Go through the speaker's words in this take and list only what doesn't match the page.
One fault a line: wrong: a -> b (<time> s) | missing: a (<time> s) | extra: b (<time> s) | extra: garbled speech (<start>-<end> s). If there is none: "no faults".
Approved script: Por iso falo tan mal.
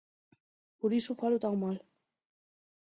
no faults